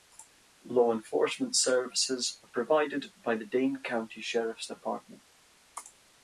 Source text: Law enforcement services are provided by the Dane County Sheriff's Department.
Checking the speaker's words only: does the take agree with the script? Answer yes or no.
yes